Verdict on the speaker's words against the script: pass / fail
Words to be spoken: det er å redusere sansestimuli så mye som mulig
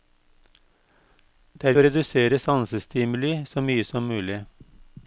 pass